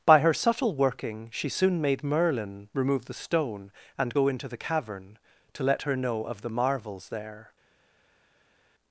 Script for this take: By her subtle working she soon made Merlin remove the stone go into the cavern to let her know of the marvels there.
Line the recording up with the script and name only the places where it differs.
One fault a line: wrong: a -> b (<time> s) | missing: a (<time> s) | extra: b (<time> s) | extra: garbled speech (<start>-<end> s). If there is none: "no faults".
extra: and (4.0 s)